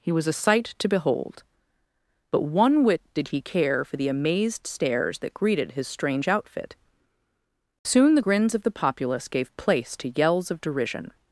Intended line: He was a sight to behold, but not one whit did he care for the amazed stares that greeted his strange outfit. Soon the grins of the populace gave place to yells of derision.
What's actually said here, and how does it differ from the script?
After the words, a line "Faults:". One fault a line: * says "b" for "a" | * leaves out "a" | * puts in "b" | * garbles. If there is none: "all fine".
He was a sight to behold, but one whit did he care for the amazed stares that greeted his strange outfit. Soon the grins of the populace gave place to yells of derision.
Faults:
* leaves out "not"